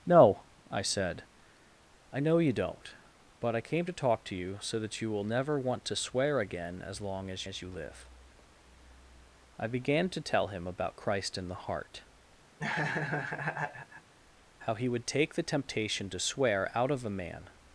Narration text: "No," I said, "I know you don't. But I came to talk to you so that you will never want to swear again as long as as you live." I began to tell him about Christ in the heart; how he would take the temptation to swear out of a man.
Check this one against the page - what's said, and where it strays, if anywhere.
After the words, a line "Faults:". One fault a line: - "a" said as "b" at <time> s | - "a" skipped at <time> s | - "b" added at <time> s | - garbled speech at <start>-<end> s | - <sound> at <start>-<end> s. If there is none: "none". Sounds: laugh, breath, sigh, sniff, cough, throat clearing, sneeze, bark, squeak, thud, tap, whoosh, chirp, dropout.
"No," I said, "I know you don't. But I came to talk to you so that you will never want to swear again as long as as you live." I began to tell him about Christ in the heart; how he would take the temptation to swear out of a man.
Faults:
- laugh at 12.6-14.1 s